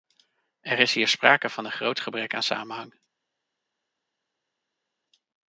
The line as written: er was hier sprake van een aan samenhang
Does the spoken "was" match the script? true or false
false